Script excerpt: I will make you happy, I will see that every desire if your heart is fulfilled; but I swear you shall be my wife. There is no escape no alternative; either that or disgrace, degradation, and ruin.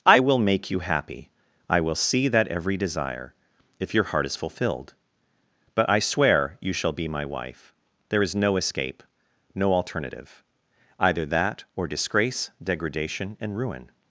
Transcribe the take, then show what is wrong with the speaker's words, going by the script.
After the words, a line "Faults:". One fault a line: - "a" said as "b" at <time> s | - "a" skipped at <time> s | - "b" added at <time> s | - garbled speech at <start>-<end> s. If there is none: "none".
I will make you happy, I will see that every desire if your heart is fulfilled; but I swear you shall be my wife. There is no escape no alternative; either that or disgrace, degradation, and ruin.
Faults:
none